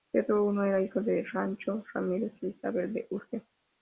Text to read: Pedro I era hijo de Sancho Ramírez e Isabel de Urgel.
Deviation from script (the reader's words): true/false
false